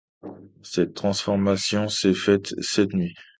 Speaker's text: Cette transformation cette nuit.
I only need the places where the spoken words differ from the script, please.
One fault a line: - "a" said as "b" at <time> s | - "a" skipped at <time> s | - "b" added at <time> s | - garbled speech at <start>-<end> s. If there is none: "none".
- "s'est faite" added at 1.9 s